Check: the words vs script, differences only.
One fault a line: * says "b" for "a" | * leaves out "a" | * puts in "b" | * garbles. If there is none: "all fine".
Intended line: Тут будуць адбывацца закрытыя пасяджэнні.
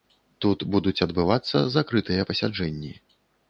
all fine